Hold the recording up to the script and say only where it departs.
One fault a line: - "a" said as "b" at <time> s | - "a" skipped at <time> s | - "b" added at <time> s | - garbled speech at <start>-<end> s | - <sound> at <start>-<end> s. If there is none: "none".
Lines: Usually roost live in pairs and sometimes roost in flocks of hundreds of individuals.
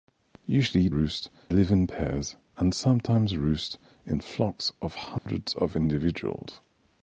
- dropout at 5.2-5.3 s